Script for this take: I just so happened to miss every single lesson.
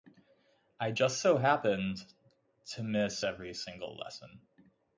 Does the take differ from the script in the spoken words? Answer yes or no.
no